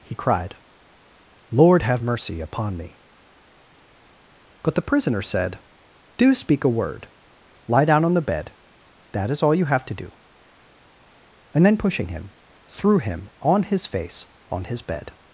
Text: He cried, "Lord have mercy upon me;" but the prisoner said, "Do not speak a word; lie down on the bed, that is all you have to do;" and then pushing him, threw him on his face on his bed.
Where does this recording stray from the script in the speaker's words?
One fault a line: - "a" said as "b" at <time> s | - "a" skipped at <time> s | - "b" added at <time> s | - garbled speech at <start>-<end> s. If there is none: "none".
- "not" skipped at 6.3 s